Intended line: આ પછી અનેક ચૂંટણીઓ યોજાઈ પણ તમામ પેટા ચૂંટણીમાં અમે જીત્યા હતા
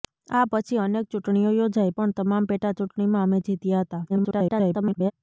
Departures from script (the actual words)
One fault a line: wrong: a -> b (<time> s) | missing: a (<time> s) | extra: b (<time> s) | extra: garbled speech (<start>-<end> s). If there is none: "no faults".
extra: garbled speech (4.1-5.1 s)